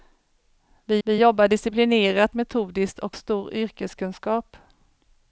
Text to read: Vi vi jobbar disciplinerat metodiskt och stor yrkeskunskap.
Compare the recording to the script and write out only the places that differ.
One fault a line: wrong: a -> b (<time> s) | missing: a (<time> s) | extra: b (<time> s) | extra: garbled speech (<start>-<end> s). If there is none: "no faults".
no faults